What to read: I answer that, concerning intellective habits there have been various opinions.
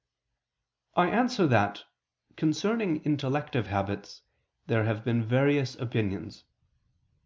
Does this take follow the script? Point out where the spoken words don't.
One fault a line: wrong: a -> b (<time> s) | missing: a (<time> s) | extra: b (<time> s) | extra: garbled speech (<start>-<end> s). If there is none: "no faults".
no faults